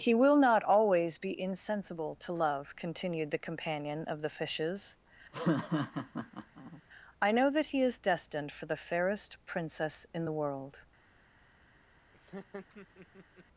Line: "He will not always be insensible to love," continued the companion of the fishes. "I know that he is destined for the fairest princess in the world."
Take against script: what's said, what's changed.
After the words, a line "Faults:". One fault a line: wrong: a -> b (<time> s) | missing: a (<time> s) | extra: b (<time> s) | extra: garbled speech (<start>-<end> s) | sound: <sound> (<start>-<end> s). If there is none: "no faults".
"He will not always be insensible to love," continued the companion of the fishes. "I know that he is destined for the fairest princess in the world."
Faults:
sound: laugh (5.3-6.8 s)
sound: laugh (12.1-13.5 s)